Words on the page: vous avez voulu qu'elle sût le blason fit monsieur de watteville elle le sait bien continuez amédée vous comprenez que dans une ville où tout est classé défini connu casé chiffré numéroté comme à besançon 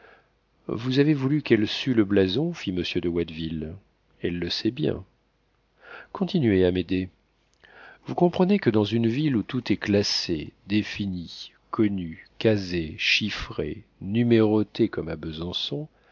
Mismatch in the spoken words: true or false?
false